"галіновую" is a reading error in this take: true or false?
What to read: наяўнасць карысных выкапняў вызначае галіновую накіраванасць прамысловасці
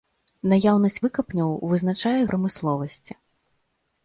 true